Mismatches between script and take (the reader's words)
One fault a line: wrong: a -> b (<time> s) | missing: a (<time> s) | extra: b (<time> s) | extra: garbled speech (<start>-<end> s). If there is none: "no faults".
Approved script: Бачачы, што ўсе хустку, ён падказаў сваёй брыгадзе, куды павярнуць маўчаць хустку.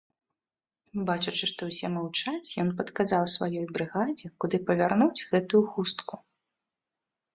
wrong: хустку -> маўчаць (2.0 s)
wrong: маўчаць -> гэтую (5.3 s)